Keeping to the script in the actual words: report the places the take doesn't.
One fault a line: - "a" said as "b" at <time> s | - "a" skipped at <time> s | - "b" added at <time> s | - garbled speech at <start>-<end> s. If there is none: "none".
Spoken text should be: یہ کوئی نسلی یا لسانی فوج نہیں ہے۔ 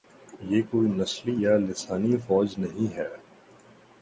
none